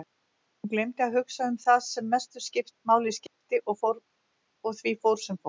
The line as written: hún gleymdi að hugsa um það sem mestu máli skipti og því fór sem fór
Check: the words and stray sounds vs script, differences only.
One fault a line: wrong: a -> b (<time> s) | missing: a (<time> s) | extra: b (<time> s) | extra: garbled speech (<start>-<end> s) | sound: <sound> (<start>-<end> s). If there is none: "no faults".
sound: dropout (3.3-3.4 s)